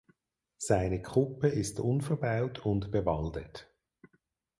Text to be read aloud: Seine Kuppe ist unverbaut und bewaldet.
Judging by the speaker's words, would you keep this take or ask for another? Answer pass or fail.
pass